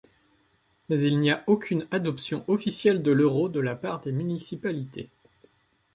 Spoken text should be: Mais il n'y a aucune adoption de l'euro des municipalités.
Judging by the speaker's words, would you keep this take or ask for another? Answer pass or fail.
fail